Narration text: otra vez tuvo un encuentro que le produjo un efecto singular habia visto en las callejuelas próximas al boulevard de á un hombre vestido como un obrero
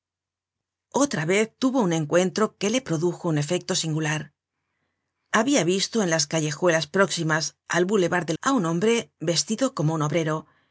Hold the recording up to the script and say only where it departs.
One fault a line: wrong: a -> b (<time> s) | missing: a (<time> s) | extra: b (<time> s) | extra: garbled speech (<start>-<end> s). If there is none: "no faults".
no faults